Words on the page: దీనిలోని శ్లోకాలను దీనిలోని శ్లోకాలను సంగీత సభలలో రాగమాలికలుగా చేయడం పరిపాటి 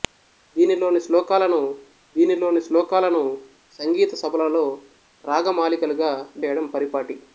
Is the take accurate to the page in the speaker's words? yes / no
yes